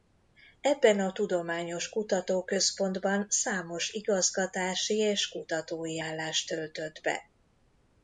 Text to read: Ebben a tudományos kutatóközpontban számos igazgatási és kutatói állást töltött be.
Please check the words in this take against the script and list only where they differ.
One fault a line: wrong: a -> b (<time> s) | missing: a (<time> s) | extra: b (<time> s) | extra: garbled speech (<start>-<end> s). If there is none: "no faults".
no faults